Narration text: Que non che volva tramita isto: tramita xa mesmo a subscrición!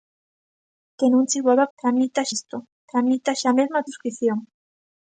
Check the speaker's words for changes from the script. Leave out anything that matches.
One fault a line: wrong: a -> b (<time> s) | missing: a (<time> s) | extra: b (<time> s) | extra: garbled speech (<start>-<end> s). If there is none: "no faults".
no faults